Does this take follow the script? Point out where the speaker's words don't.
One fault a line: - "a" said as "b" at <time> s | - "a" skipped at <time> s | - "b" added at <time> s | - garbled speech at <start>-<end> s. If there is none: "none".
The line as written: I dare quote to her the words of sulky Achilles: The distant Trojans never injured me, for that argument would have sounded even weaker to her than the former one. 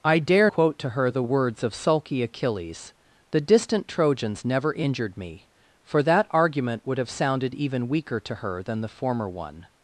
none